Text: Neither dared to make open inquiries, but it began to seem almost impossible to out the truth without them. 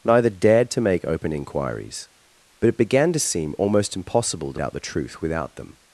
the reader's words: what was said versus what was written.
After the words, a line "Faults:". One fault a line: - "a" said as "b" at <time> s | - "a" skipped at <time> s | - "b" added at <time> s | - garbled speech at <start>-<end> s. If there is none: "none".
Neither dared to make open inquiries, but it began to seem almost impossible to out the truth without them.
Faults:
none